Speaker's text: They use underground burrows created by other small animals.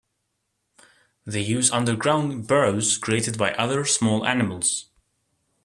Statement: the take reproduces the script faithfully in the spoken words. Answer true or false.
true